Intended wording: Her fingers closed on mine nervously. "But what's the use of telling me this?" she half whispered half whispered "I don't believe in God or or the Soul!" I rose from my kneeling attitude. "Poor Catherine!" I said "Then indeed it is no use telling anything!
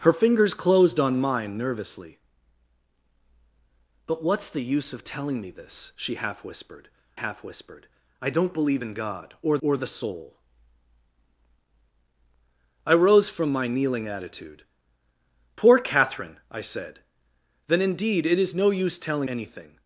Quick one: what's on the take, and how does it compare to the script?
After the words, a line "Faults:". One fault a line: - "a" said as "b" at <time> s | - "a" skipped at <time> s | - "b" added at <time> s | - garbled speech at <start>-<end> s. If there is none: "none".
Her fingers closed on mine nervously. "But what's the use of telling me this?" she half whispered half whispered "I don't believe in God or or the Soul!" I rose from my kneeling attitude. "Poor Catherine!" I said "Then indeed it is no use telling anything!
Faults:
none